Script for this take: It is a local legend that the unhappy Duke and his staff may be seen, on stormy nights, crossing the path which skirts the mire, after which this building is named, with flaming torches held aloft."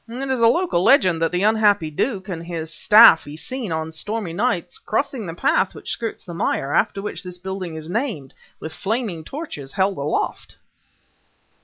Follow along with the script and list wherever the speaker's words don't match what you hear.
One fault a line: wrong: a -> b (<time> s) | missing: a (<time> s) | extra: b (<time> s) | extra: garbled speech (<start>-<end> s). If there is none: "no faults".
missing: may (3.3 s)